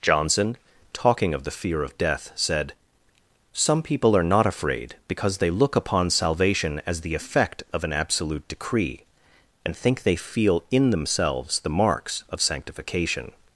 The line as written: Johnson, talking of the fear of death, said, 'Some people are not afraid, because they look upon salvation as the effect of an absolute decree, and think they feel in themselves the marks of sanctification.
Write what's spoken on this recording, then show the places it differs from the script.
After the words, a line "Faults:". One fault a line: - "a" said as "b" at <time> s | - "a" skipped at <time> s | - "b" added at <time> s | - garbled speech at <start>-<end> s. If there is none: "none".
Johnson, talking of the fear of death, said, 'Some people are not afraid, because they look upon salvation as the effect of an absolute decree, and think they feel in themselves the marks of sanctification.
Faults:
none